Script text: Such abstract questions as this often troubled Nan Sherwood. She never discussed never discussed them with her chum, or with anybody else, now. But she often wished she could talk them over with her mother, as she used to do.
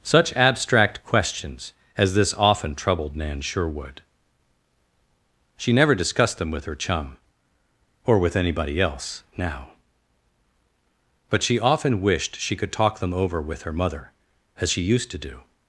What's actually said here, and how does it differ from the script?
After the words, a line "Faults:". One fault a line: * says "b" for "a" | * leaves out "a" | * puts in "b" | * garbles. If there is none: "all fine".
Such abstract questions as this often troubled Nan Sherwood. She never discussed them with her chum, or with anybody else, now. But she often wished she could talk them over with her mother, as she used to do.
Faults:
* leaves out "never discussed"